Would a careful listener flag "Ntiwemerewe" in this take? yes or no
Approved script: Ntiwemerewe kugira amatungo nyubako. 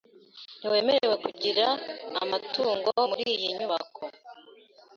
no